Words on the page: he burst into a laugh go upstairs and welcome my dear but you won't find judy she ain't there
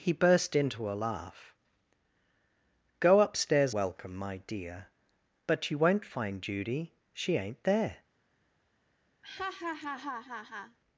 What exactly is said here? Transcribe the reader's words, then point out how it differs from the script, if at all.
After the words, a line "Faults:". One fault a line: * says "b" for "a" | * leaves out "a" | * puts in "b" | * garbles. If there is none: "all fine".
he burst into a laugh go upstairs welcome my dear but you won't find judy she ain't there
Faults:
* leaves out "and"